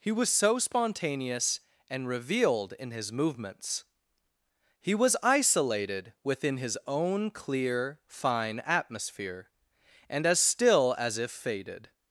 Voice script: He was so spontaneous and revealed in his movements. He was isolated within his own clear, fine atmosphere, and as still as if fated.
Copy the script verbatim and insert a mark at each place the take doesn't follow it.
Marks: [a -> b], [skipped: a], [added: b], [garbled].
He was so spontaneous and revealed in his movements. He was isolated within his own clear, fine atmosphere, and as still as if fated.